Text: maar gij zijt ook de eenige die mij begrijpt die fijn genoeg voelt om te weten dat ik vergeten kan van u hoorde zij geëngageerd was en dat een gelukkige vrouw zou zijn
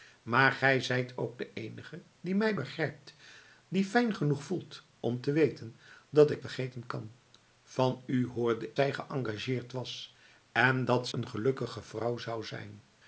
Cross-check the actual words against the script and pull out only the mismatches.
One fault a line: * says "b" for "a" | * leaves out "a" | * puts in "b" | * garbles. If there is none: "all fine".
all fine